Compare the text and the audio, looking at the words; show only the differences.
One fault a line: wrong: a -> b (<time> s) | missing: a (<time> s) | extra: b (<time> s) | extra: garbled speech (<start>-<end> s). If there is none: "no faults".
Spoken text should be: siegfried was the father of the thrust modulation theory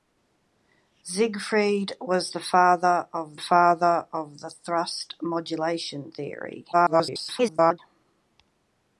extra: father of (3.4 s)
extra: garbled speech (6.7-7.8 s)